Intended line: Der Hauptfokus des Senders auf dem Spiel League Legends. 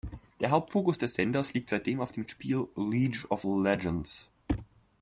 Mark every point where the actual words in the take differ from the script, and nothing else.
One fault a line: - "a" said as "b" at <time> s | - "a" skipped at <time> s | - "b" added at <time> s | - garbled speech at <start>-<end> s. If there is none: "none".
- "liegt seitdem" added at 1.5 s
- "of" added at 3.3 s